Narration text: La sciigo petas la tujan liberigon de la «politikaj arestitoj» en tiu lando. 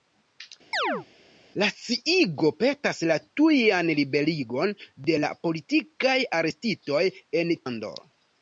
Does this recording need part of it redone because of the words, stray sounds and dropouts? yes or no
yes